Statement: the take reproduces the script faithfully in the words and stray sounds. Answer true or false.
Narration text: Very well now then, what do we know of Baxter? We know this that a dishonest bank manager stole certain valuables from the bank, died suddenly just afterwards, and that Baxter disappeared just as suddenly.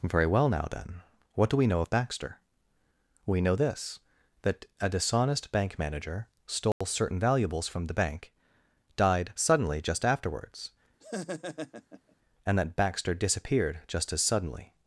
false